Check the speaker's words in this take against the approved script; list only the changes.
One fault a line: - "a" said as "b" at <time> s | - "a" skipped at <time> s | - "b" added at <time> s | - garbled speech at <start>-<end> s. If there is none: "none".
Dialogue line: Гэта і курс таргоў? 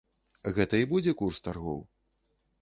- "будзе" added at 0.9 s